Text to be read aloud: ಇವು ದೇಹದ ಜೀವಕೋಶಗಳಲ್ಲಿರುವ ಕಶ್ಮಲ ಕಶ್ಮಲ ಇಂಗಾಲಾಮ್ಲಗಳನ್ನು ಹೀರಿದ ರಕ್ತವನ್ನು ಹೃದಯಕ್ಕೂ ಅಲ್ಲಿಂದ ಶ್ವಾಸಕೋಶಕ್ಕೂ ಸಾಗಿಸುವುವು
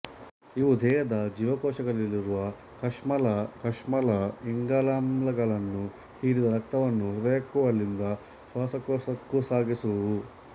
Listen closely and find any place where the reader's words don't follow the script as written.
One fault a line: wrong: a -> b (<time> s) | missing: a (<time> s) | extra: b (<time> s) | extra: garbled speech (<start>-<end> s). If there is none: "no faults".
no faults